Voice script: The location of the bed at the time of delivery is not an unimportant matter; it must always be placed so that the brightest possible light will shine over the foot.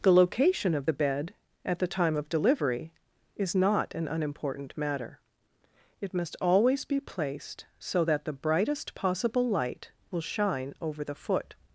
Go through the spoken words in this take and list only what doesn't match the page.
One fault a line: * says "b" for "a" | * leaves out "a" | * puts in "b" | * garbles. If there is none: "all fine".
all fine